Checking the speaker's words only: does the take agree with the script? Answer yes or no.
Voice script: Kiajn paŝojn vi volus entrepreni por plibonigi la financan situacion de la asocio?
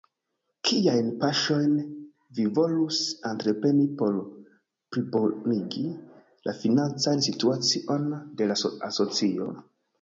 yes